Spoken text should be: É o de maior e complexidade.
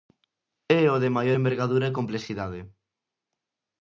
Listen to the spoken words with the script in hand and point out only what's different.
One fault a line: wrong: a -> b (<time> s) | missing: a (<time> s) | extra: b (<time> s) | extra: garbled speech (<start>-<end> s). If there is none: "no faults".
extra: envergadura (1.3 s)